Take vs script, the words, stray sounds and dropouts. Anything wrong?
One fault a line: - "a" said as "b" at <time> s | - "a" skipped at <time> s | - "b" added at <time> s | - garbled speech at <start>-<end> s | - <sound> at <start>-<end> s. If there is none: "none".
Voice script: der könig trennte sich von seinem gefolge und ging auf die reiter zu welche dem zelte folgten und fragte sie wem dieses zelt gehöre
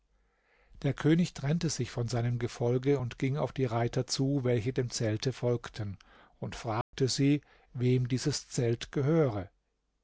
- dropout at 6.8-6.9 s